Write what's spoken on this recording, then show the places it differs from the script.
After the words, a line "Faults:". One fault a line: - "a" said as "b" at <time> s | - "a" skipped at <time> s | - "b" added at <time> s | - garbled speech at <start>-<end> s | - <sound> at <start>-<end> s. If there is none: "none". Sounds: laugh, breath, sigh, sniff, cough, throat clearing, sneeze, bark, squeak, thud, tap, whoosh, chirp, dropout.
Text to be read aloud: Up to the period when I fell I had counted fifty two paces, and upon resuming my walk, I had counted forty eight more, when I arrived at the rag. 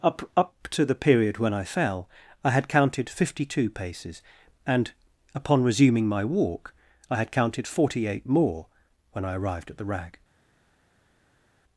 Up up to the period when I fell I had counted fifty two paces, and upon resuming my walk, I had counted forty eight more, when I arrived at the rag.
Faults:
- "up" added at 0.3 s